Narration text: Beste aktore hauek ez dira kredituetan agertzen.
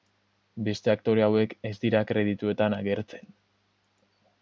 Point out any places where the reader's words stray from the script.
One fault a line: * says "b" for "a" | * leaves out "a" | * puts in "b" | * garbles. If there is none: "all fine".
all fine